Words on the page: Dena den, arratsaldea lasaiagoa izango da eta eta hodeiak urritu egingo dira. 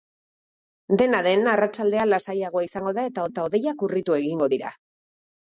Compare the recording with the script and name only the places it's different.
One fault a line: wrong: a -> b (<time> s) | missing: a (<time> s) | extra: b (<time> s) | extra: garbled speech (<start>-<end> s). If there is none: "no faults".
no faults